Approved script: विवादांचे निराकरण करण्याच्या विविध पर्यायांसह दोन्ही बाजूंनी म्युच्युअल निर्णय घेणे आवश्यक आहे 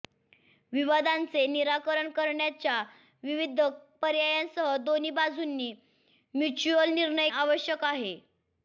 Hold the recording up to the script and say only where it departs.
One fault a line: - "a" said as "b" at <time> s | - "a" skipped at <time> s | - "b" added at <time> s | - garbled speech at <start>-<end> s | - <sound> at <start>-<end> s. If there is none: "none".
- "घेणे" skipped at 7.3 s